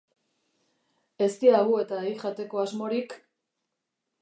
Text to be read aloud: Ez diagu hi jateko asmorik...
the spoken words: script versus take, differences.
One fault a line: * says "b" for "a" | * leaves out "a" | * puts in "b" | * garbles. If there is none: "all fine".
* puts in "eta"